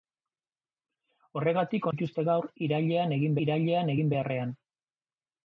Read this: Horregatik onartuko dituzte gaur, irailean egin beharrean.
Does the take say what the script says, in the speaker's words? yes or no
no